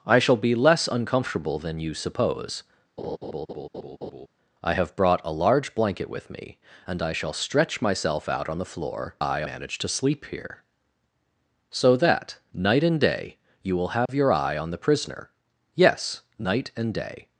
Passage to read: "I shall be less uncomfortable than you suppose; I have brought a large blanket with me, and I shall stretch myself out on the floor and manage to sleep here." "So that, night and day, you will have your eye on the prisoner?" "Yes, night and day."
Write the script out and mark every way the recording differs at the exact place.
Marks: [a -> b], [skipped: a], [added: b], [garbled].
"I shall be less uncomfortable than you suppose; I have brought a large blanket with me, and I shall stretch myself out on the floor [and -> eye] manage to sleep here." "So that, night and day, you will have your eye on the prisoner?" "Yes, night and day."